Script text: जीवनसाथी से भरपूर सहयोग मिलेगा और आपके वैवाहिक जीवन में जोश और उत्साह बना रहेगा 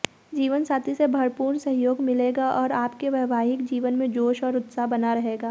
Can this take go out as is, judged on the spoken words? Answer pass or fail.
pass